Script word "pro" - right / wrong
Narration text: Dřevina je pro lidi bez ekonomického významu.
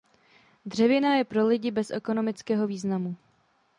right